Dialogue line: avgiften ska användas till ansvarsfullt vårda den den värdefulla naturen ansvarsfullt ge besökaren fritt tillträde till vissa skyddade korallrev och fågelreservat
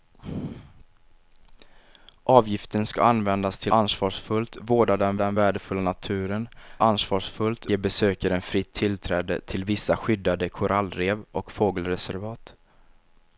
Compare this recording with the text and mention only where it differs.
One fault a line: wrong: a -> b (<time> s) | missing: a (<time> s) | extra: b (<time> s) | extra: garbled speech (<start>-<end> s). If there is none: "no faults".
no faults